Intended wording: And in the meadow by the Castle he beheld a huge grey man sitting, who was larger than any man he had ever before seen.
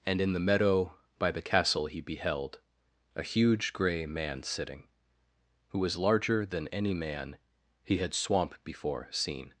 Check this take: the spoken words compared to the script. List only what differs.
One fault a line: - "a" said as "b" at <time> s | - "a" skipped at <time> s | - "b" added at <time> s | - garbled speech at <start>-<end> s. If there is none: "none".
- "ever" said as "swamp" at 8.1 s